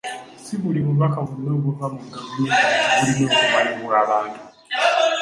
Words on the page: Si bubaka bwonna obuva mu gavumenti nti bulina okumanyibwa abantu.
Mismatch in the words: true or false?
true